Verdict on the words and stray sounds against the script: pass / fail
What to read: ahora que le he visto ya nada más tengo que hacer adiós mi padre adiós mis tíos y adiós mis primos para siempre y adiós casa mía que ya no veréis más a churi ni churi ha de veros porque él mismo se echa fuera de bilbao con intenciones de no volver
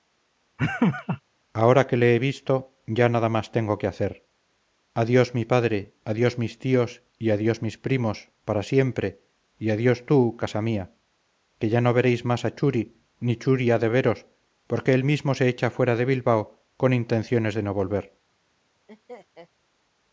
fail